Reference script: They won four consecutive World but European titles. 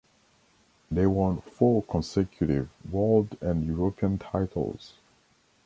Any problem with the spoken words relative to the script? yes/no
yes